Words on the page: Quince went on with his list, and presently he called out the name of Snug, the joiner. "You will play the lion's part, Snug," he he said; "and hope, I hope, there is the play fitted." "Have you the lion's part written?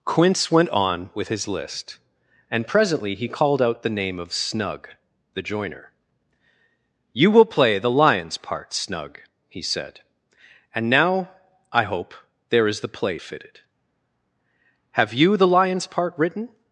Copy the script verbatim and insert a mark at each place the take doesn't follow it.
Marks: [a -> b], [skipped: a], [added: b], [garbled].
Quince went on with his list, and presently he called out the name of Snug, the joiner. "You will play the lion's part, Snug," he [skipped: he] said; "and [hope, -> now] I hope, there is the play fitted." "Have you the lion's part written?